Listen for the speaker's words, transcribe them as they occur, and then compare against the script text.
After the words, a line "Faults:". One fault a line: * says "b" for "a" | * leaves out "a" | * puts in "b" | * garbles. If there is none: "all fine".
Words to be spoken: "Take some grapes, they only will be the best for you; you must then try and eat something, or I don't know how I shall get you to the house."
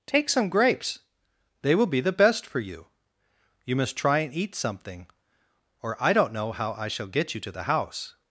"Take some grapes, they will be the best for you; you must try and eat something, or I don't know how I shall get you to the house."
Faults:
* leaves out "only"
* leaves out "then"